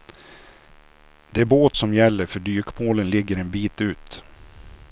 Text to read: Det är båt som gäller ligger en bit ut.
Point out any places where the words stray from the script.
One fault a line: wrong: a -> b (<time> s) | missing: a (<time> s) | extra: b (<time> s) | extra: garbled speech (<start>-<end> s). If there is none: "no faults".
extra: för dykmålen (2.3 s)